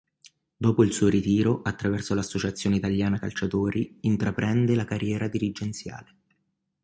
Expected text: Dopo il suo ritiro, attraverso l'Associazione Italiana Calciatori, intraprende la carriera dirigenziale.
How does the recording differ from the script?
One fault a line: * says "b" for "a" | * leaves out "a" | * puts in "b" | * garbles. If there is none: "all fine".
all fine